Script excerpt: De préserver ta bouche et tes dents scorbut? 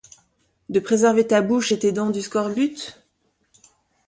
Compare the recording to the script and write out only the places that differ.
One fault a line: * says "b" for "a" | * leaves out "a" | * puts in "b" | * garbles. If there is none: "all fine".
* puts in "du"